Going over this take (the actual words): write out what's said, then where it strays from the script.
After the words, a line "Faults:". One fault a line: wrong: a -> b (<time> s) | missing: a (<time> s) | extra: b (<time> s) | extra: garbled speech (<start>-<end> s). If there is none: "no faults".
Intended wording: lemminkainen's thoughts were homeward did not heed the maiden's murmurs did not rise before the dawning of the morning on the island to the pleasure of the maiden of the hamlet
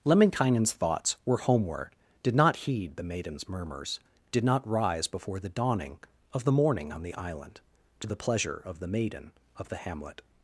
lemminkainen's thoughts were homeward did not heed the maiden's murmurs did not rise before the dawning of the morning on the island to the pleasure of the maiden of the hamlet
Faults:
no faults